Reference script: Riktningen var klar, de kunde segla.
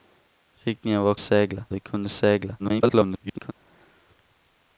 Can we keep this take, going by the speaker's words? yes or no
no